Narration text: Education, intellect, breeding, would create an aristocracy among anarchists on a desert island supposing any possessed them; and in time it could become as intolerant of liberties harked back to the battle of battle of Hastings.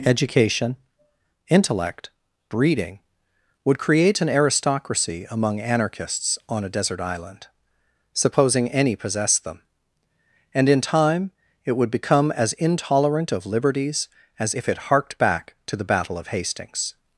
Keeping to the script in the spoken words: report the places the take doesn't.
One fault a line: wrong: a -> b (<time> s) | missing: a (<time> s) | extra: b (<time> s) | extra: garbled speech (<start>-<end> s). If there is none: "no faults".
wrong: could -> would (11.8 s)
extra: as if it (14.4 s)
missing: battle of (16.3 s)